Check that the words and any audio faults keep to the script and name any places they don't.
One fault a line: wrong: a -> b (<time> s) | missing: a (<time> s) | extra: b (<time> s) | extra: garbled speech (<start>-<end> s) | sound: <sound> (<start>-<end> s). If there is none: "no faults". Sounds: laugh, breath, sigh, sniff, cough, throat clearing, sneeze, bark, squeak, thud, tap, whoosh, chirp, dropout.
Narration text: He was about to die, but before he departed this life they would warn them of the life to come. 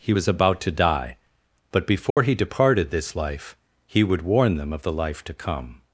sound: dropout (2.1-2.2 s)
wrong: they -> he (3.8 s)